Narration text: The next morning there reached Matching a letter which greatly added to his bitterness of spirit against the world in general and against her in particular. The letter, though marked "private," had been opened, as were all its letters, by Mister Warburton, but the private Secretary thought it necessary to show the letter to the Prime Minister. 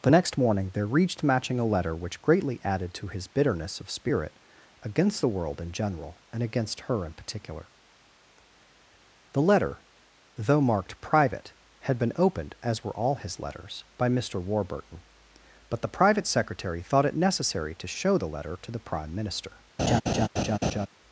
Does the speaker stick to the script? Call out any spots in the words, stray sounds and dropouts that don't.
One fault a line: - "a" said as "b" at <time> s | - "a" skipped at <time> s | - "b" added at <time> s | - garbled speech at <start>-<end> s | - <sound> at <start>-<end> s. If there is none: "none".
- "its" said as "his" at 13.2 s
- laugh at 19.8-20.9 s